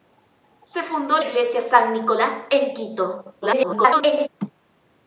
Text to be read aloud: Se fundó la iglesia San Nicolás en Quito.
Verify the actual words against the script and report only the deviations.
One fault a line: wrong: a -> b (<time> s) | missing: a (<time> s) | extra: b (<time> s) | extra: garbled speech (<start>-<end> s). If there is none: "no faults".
missing: la (1.2 s)
extra: garbled speech (3.4-4.3 s)